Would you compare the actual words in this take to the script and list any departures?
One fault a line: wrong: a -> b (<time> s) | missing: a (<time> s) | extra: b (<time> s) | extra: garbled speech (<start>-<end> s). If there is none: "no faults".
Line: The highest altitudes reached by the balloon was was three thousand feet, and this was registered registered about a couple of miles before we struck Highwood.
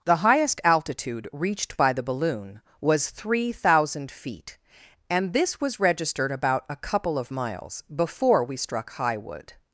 wrong: altitudes -> altitude (0.6 s)
missing: was (3.1 s)
missing: registered (6.3 s)